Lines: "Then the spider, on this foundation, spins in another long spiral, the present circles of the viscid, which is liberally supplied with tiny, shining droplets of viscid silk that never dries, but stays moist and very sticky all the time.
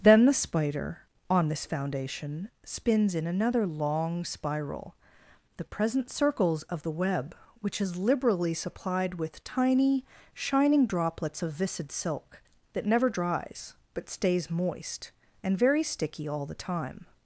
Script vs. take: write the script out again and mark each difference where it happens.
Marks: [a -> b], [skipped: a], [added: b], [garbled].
"Then the spider, on this foundation, spins in another long spiral, the present circles of the [viscid, -> web] which is liberally supplied with tiny, shining droplets of viscid silk that never dries, but stays moist and very sticky all the time.